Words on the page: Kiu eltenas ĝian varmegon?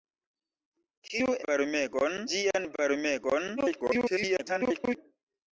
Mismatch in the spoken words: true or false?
true